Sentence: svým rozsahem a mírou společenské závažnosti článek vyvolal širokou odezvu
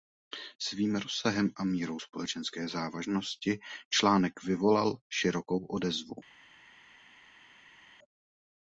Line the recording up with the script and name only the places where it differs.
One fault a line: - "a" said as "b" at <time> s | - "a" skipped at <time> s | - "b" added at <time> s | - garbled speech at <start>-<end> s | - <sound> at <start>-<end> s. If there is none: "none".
none